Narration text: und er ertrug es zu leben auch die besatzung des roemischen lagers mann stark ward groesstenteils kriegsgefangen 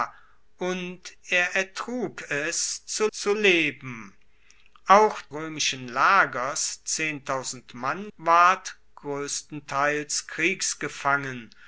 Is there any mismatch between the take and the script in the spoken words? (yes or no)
yes